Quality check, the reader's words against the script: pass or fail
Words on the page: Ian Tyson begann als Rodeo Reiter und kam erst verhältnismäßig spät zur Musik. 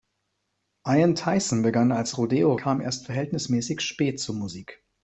fail